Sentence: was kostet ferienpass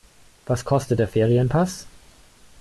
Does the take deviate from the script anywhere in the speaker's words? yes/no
yes